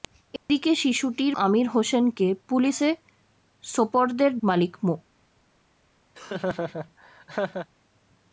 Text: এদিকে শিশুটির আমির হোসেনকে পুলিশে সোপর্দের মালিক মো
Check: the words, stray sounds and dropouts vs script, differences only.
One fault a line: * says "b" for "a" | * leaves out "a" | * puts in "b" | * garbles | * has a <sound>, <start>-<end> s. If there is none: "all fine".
* has a dropout, 0.4-0.5 s
* has a laugh, 6.1-7.7 s